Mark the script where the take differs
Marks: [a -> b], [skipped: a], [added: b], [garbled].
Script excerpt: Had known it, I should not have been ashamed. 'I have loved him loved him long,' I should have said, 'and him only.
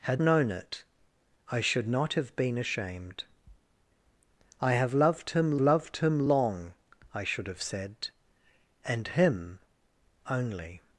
Had known it, I should not have been ashamed. 'I have loved him loved him long,' I should have said, 'and him only.